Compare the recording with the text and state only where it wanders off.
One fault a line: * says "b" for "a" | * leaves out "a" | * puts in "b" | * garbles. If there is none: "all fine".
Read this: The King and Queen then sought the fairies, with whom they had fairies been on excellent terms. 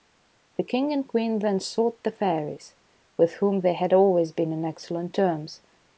* says "always" for "fairies"